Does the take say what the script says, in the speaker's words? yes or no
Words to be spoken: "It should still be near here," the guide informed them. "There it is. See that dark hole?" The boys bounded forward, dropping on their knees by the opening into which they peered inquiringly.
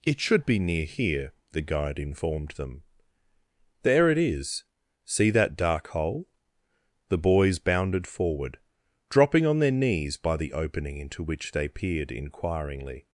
no